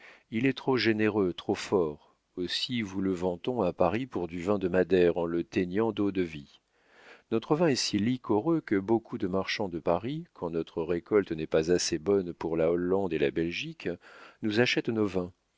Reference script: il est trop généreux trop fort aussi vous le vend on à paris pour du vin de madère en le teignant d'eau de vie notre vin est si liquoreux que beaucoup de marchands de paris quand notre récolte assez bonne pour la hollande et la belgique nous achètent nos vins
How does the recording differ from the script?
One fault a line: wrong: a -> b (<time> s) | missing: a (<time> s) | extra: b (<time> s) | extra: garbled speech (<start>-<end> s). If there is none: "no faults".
extra: n'est pas (11.3 s)